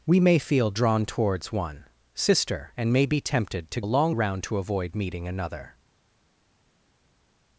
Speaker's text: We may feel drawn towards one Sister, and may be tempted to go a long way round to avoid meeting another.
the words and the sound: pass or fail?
fail